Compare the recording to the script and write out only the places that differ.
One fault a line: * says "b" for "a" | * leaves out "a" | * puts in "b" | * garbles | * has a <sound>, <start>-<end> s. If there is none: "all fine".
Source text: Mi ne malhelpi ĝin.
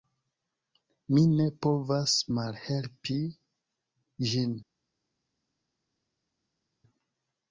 * puts in "povas"